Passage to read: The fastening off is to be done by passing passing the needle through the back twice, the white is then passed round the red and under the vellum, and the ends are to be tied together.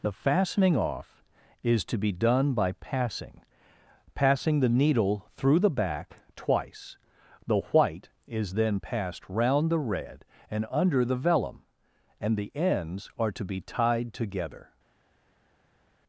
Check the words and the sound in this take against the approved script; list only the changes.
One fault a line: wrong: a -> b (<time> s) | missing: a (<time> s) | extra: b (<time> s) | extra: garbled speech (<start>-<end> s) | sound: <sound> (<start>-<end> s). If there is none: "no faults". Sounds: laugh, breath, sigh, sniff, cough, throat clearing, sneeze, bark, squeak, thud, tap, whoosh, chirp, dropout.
no faults